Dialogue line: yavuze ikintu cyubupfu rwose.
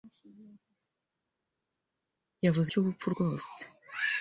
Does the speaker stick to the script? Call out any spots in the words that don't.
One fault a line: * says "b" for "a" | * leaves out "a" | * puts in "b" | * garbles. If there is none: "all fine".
* leaves out "ikintu"